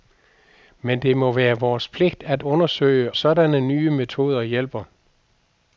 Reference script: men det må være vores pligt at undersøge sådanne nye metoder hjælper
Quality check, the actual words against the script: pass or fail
pass